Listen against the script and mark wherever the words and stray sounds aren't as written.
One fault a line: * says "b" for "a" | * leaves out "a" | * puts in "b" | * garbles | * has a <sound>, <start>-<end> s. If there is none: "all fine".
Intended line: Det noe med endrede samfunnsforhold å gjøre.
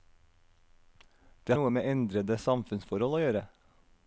all fine